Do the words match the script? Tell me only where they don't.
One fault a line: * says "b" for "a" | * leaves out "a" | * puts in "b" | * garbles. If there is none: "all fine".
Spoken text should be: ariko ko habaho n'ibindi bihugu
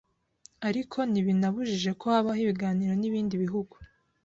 * puts in "ntibinabujije"
* puts in "ibiganiro"